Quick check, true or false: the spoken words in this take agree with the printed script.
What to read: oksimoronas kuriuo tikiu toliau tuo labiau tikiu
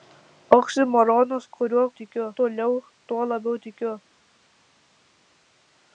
true